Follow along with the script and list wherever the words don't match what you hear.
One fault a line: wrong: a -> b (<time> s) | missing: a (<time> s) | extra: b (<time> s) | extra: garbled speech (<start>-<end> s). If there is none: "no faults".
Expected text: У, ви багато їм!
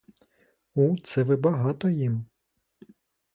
extra: це (1.0 s)